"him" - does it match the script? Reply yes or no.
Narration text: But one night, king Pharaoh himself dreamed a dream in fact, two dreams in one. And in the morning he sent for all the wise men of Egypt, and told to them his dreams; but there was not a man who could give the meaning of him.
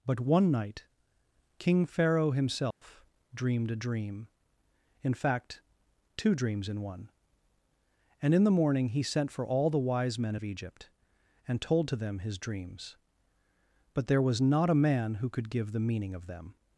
no